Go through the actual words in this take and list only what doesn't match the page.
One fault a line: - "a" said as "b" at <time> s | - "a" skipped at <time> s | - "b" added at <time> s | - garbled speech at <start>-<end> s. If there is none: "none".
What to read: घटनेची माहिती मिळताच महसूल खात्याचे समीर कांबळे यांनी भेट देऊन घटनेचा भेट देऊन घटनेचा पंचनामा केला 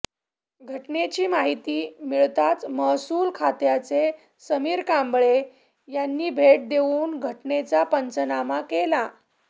- "भेट देऊन घटनेचा" skipped at 7.8 s